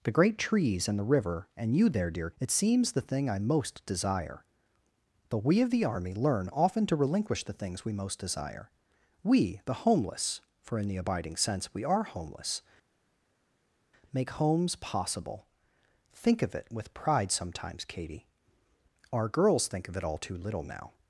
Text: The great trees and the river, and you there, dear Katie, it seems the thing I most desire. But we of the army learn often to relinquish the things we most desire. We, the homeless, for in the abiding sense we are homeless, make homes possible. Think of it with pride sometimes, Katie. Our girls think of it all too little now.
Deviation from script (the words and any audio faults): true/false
true